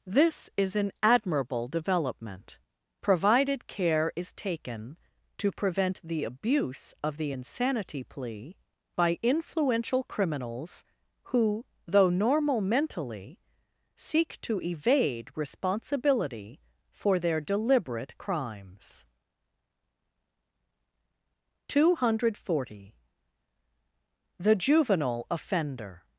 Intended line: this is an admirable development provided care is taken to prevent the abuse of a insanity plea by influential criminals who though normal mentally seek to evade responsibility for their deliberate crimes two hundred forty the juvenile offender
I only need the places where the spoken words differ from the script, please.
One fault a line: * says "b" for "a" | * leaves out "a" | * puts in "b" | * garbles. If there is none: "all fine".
* says "the" for "a"